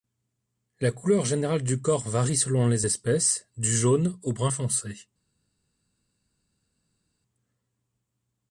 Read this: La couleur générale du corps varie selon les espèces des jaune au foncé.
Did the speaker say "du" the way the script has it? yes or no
yes